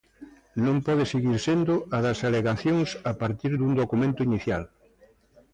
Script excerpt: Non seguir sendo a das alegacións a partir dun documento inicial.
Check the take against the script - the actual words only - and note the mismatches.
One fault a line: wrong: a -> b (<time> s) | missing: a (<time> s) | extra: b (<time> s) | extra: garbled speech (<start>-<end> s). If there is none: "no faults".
extra: pode (0.9 s)